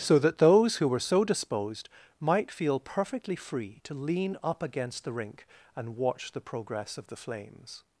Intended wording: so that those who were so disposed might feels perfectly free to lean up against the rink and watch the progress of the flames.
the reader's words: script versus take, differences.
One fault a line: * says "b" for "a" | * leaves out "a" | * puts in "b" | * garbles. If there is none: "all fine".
* says "feel" for "feels"